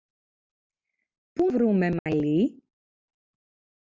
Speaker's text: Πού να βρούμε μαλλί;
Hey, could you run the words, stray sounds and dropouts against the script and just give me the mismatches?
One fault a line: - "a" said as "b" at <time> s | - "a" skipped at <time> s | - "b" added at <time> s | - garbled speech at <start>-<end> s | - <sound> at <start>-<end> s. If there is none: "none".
- "να" skipped at 1.5 s
- dropout at 2.0-2.1 s